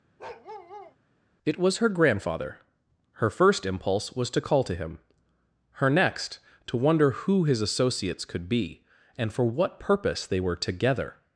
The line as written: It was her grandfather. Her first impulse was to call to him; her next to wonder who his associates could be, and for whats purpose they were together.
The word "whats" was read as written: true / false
false